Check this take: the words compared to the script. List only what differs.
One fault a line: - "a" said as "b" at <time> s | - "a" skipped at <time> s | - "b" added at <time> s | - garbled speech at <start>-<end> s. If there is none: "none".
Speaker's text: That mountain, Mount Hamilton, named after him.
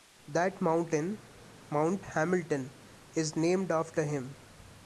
- "is" added at 3.1 s